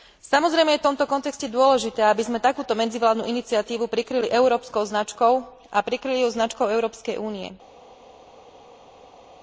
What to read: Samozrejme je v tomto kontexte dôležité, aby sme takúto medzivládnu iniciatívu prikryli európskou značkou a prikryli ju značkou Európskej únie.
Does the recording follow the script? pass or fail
pass